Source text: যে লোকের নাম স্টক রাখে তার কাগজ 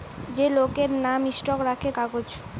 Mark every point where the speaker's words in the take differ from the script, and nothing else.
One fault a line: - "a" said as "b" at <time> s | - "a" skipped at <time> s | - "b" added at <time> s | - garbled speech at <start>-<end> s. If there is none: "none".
- "তার" skipped at 1.9 s